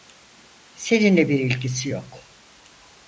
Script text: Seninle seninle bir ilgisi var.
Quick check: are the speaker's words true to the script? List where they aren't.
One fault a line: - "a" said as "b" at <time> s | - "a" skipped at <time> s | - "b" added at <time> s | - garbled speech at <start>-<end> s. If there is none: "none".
- "seninle" skipped at 1.3 s
- "var" said as "yok" at 1.9 s